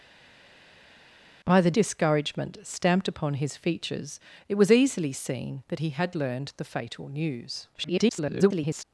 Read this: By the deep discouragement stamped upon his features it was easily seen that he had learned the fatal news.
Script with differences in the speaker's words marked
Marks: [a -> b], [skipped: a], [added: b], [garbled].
By the [skipped: deep] discouragement stamped upon his features it was easily seen that he had learned the fatal news. [garbled]